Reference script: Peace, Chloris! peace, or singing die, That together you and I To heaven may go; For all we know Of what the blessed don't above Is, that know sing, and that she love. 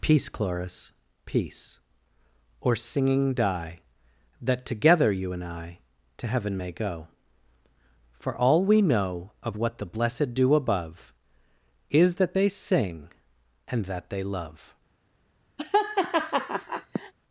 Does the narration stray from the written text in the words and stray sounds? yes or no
yes